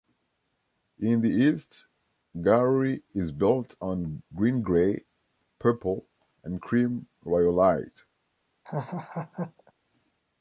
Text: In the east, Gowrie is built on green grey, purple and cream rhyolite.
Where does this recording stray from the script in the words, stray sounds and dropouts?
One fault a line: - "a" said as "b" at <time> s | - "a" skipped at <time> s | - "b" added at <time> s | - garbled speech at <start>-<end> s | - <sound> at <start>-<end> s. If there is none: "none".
- laugh at 8.6-9.7 s